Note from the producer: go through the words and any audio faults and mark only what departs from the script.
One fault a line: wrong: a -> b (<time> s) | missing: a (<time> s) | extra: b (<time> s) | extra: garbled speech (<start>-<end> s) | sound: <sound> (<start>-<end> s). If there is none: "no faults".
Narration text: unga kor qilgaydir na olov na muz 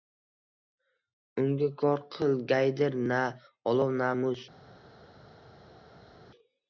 no faults